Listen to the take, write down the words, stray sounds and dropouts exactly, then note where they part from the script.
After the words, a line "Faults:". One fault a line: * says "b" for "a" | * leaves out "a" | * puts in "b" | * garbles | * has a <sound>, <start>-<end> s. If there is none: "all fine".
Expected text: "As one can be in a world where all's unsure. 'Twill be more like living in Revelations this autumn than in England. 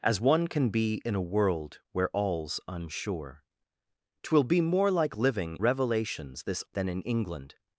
"As one can be in a world where all's unsure. 'Twill be more like living Revelations this than in England.
Faults:
* leaves out "in"
* leaves out "autumn"